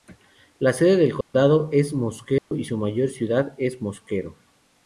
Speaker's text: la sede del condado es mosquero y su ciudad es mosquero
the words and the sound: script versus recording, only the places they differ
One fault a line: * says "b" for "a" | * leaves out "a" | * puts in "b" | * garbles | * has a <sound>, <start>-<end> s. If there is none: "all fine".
* has a dropout, 1.2-1.3 s
* has a dropout, 2.4-2.5 s
* puts in "mayor"